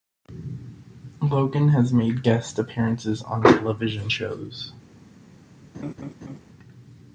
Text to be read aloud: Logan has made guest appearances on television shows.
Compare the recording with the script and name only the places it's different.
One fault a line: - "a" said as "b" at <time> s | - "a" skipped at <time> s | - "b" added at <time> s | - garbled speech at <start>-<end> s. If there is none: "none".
none